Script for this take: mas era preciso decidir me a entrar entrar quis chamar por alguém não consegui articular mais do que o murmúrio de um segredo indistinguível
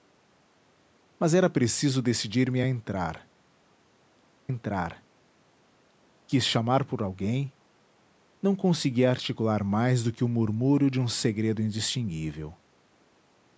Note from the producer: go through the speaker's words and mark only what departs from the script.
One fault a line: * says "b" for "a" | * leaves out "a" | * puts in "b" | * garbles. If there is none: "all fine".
all fine